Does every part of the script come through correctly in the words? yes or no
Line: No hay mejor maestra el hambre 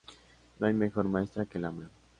no